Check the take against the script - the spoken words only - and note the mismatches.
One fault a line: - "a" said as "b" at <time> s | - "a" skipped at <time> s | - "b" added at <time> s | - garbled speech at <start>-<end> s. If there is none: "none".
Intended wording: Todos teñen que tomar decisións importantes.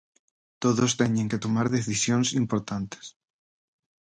none